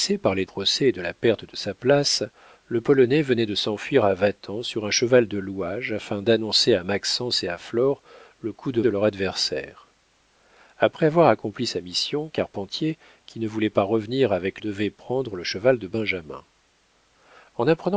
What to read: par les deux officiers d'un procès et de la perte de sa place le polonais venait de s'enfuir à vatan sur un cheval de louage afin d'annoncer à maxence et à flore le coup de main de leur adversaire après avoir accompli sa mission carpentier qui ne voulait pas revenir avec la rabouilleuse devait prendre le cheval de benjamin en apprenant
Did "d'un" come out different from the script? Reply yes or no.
yes